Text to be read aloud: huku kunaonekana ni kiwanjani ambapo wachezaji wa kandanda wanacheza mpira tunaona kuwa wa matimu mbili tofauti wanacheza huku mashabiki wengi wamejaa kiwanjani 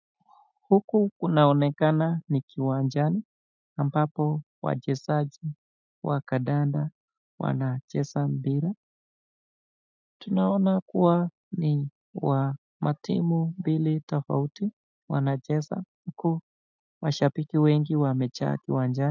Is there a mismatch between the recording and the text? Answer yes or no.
yes